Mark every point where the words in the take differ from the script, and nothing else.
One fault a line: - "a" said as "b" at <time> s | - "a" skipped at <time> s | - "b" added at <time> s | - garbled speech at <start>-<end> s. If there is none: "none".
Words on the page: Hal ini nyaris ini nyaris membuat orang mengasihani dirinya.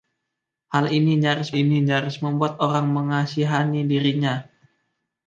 none